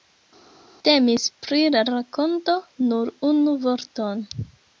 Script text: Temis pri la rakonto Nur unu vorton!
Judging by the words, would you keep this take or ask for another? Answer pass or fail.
pass